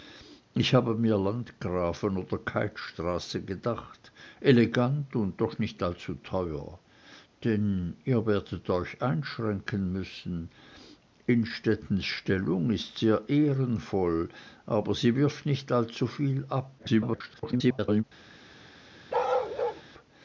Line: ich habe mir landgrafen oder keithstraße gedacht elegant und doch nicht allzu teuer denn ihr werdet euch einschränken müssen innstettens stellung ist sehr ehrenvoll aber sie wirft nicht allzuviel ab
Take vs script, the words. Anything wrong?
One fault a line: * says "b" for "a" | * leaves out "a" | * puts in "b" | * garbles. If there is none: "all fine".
* garbles